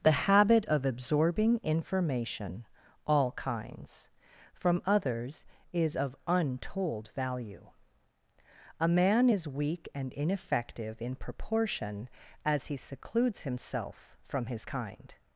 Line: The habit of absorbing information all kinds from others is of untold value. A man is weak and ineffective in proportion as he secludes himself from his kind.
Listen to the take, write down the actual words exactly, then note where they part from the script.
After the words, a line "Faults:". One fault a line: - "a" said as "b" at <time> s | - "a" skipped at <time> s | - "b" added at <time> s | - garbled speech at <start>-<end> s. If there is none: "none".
The habit of absorbing information all kinds from others is of untold value. A man is weak and ineffective in proportion as he secludes himself from his kind.
Faults:
none